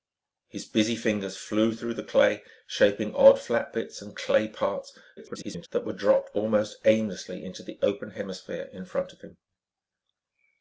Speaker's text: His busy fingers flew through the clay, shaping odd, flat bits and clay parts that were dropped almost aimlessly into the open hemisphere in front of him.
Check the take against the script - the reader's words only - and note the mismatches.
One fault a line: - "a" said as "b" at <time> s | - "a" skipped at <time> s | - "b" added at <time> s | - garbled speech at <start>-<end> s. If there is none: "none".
- garbled speech at 5.2-5.7 s